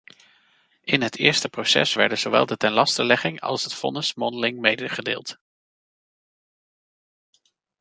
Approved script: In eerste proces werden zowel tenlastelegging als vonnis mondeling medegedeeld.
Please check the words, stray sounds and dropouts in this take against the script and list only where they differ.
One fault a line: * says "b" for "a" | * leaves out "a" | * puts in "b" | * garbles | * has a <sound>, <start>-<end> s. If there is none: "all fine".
* puts in "het"
* puts in "de"
* puts in "het"